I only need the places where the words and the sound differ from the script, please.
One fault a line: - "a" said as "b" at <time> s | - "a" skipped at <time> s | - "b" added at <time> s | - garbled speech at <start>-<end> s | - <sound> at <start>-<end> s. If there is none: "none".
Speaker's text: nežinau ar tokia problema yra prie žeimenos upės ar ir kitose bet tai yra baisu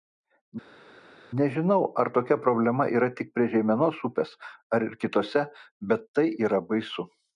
- "tik" added at 3.2 s